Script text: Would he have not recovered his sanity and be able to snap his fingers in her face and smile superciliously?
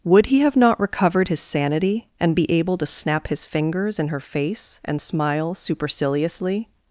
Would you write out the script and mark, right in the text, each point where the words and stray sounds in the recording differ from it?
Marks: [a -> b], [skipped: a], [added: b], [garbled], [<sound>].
Would he have not recovered his sanity and be able to snap his fingers in her face and smile superciliously?